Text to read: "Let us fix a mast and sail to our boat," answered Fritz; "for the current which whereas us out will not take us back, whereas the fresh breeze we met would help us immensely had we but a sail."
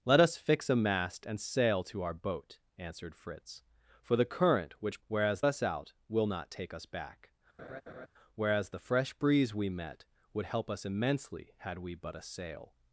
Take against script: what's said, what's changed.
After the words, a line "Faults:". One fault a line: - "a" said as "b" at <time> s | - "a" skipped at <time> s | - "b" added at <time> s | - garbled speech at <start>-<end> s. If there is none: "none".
"Let us fix a mast and sail to our boat," answered Fritz; "for the current which whereas us out will not take us back, whereas the fresh breeze we met would help us immensely had we but a sail."
Faults:
none